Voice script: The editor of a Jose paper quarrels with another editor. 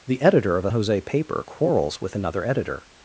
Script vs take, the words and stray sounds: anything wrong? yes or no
no